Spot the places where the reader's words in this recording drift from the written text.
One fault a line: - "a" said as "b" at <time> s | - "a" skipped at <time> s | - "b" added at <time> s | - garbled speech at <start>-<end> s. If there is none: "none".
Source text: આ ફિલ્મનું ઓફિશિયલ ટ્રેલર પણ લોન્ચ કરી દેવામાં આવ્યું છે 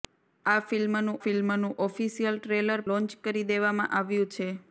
- "ફિલ્મનું" added at 1.2 s
- "પણ" skipped at 2.9 s